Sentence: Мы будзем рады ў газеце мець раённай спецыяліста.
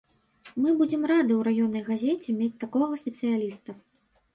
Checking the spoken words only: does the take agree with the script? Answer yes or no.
no